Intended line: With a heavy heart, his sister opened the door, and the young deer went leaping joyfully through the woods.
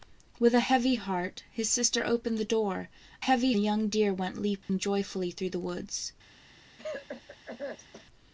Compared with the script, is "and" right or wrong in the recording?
wrong